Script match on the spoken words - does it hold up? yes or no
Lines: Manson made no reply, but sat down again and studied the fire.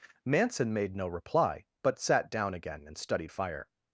no